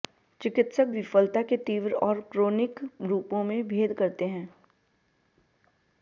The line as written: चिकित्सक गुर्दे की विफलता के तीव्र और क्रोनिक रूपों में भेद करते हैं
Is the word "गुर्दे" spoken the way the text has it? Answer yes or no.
no